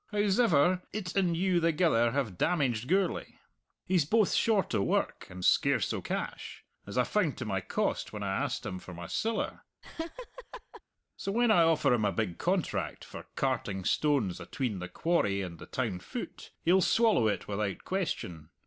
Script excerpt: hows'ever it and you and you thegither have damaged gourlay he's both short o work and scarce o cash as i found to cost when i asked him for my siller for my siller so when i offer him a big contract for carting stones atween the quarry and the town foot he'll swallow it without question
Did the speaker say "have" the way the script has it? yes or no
yes